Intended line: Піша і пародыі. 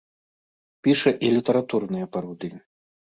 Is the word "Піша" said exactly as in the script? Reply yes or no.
yes